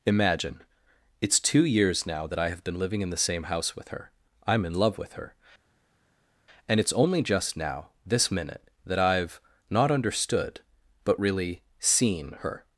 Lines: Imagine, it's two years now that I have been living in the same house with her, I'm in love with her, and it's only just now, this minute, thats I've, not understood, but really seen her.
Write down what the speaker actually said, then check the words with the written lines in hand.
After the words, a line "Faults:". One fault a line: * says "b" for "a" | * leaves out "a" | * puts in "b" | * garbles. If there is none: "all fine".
Imagine, it's two years now that I have been living in the same house with her, I'm in love with her, and it's only just now, this minute, that I've, not understood, but really seen her.
Faults:
* says "that" for "thats"